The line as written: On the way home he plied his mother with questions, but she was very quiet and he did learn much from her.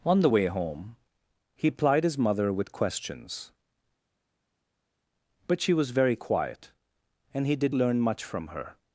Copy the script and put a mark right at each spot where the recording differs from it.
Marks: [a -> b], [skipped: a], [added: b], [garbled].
On the way home he plied his mother with questions, but she was very quiet and he did learn much from her.